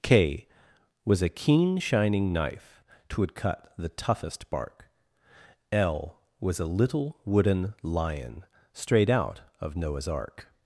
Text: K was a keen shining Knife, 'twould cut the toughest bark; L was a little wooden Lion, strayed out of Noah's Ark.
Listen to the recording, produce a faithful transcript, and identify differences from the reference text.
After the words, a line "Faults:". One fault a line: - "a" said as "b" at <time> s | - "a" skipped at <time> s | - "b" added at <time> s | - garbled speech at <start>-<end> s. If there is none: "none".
K was a keen shining Knife, 'twould cut the toughest bark; L was a little wooden Lion, strayed out of Noah's Ark.
Faults:
none